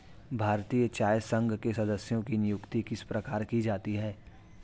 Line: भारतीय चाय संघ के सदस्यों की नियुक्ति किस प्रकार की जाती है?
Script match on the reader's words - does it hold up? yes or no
yes